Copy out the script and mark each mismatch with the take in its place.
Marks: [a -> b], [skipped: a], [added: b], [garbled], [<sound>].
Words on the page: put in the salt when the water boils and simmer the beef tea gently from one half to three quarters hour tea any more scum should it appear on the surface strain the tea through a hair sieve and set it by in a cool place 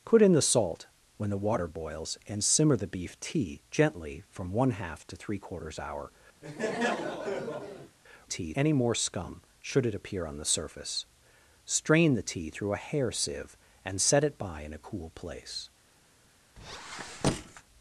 put in the salt when the water boils and simmer the beef tea gently from one half to three quarters hour [laugh] tea any more scum should it appear on the surface strain the tea through a hair sieve and set it by in a cool place [squeak]